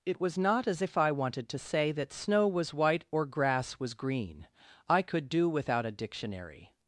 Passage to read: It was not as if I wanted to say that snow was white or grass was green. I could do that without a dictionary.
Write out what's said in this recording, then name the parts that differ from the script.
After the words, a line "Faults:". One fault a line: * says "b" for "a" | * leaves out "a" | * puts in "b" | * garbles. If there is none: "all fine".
It was not as if I wanted to say that snow was white or grass was green. I could do without a dictionary.
Faults:
* leaves out "that"